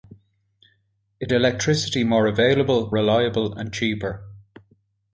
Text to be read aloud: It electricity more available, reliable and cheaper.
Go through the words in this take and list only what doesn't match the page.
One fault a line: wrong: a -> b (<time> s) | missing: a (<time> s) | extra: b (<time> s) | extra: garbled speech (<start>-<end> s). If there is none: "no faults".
no faults